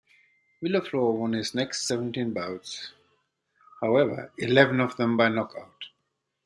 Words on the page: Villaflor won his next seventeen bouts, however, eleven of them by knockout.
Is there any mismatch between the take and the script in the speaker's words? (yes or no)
no